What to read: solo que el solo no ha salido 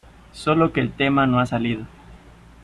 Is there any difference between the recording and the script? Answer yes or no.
yes